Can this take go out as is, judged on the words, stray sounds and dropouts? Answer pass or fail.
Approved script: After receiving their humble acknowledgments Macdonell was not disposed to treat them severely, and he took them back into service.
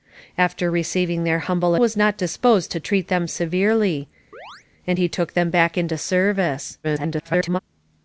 fail